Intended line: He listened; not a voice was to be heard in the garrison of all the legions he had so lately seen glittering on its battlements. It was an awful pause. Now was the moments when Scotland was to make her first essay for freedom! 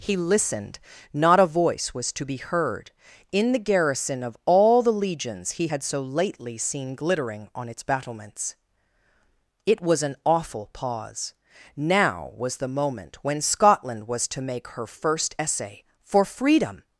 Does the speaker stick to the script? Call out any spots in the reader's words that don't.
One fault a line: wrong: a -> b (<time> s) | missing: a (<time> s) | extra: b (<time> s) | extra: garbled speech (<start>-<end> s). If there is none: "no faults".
wrong: moments -> moment (12.7 s)